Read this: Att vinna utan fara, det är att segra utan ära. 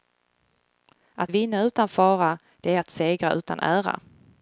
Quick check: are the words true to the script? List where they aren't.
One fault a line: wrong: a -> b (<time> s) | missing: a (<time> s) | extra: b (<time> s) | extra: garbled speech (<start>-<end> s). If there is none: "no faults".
no faults